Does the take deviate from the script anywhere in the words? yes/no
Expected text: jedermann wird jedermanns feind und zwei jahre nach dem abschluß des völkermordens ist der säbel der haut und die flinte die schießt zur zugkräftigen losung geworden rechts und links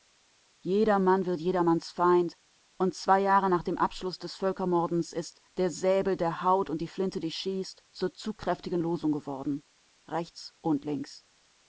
no